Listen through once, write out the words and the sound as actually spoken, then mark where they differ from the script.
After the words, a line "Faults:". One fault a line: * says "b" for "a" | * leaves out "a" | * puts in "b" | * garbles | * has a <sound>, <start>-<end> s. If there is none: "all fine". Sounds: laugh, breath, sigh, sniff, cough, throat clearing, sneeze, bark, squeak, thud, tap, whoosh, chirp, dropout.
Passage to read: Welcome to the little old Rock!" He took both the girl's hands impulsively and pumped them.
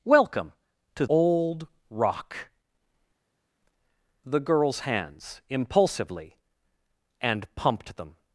Welcome to old Rock!" The girl's hands impulsively and pumped them.
Faults:
* leaves out "the little"
* leaves out "He took both"